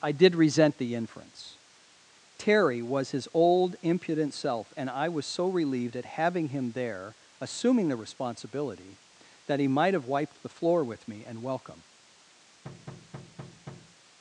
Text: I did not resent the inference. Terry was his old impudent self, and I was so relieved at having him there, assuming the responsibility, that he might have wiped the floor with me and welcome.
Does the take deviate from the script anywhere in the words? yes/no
yes